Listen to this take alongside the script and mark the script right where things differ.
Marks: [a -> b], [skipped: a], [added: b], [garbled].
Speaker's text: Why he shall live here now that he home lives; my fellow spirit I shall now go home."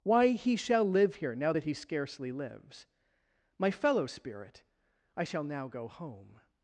Why he shall live here now that he [home -> scarcely] lives; my fellow spirit I shall now go home."